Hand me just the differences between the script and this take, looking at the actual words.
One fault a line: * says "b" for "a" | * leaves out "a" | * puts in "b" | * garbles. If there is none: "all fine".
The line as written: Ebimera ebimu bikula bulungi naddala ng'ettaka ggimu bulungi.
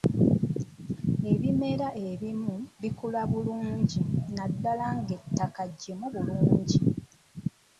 all fine